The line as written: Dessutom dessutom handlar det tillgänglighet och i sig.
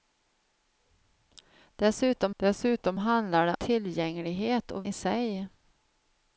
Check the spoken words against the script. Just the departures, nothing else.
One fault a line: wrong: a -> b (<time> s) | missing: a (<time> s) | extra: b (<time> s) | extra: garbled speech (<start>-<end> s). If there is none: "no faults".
no faults